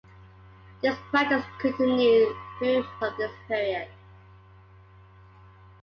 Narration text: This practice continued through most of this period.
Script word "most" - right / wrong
wrong